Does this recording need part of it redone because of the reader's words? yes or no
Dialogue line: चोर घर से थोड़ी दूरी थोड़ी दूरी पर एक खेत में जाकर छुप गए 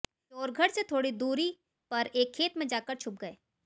yes